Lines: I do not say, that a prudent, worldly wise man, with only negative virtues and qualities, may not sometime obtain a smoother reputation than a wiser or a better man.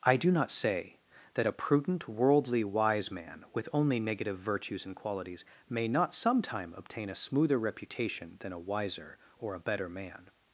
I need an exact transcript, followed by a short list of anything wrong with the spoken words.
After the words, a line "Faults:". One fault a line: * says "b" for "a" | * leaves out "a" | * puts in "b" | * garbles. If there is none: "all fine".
I do not say, that a prudent, worldly wise man, with only negative virtues and qualities, may not sometime obtain a smoother reputation than a wiser or a better man.
Faults:
all fine